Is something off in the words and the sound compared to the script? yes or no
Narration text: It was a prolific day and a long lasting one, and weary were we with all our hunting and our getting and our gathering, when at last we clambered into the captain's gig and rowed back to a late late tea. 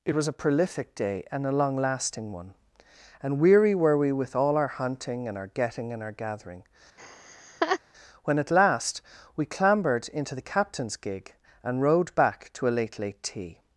yes